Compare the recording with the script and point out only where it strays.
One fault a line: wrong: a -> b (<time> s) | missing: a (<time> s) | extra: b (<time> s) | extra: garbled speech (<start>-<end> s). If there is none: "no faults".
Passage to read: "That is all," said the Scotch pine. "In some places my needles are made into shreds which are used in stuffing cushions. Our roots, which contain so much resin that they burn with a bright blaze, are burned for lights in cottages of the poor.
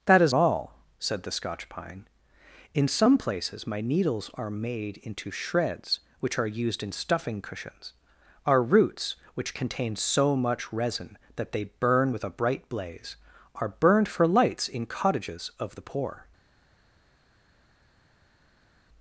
no faults